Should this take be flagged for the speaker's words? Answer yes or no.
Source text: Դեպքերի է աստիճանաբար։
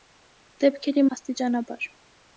no